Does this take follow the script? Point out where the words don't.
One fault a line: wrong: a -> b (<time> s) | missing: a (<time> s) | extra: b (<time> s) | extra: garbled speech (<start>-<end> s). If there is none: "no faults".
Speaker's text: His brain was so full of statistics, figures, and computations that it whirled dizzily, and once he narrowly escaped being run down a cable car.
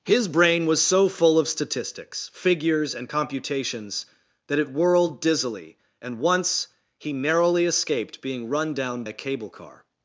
no faults